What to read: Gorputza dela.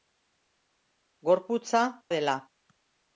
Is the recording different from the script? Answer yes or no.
no